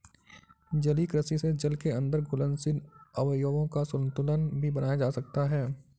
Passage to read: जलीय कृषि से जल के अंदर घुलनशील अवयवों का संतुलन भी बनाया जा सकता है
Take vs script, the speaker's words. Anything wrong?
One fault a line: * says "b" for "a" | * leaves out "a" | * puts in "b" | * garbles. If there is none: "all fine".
all fine